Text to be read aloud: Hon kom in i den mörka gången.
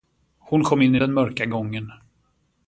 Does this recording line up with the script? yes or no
yes